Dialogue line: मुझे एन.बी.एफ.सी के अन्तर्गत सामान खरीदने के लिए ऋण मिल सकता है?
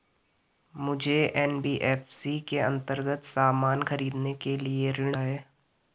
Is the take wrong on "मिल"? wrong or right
wrong